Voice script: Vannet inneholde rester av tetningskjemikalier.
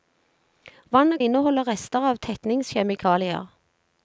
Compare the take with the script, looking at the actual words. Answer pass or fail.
pass